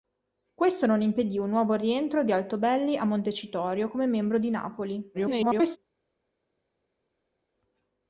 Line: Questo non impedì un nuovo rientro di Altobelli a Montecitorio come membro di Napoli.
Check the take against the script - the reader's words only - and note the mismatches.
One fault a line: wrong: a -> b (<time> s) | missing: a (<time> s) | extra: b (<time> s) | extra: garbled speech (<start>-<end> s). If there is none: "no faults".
extra: garbled speech (5.1-5.8 s)